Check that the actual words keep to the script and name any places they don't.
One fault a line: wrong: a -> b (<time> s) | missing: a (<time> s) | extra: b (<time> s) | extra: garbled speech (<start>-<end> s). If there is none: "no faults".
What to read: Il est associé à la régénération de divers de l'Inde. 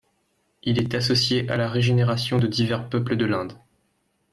extra: peuples (2.9 s)